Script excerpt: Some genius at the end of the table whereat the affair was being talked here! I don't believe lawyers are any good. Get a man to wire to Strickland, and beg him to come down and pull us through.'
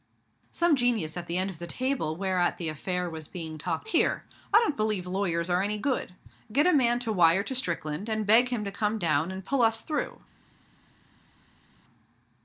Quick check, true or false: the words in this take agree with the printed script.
true